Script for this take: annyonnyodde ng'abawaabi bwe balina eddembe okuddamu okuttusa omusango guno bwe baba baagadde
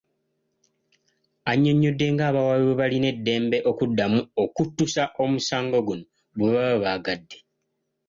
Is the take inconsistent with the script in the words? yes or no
no